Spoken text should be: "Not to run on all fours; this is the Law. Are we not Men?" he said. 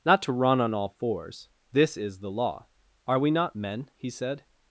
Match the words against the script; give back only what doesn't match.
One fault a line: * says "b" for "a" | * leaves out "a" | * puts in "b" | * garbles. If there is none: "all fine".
all fine